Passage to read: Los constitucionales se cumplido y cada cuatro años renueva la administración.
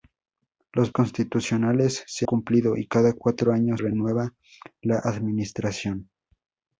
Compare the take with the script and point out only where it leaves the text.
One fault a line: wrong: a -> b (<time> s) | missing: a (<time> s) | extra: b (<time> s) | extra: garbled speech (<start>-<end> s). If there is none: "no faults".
no faults